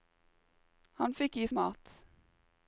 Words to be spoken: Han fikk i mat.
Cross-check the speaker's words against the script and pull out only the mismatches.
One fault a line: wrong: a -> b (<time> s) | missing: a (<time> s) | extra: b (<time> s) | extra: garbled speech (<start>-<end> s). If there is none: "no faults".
no faults